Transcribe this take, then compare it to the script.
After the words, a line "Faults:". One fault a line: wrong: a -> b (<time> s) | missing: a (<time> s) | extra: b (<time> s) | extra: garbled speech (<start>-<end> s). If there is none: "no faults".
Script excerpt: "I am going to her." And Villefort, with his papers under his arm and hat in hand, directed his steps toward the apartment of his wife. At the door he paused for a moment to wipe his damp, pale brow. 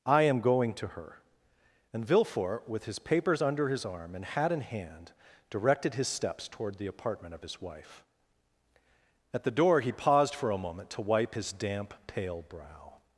"I am going to her." And Villefort, with his papers under his arm and hat in hand, directed his steps toward the apartment of his wife. At the door he paused for a moment to wipe his damp, pale brow.
Faults:
no faults